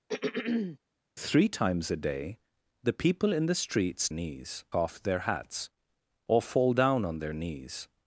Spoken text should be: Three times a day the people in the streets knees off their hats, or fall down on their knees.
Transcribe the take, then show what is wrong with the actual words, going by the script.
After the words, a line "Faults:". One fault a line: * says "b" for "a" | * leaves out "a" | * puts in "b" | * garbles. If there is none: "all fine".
Three times a day the people in the streets knees off their hats, or fall down on their knees.
Faults:
all fine